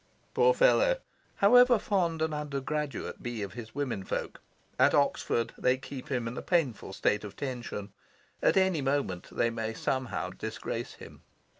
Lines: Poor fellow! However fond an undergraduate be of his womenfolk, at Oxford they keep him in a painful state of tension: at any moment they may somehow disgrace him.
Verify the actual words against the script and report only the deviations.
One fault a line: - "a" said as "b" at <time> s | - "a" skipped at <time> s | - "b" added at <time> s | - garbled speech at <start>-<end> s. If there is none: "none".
none